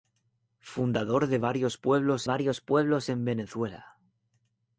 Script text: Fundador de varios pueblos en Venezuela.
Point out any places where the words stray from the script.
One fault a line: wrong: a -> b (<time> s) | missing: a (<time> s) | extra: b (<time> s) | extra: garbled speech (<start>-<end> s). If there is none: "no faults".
extra: varios pueblos (2.2 s)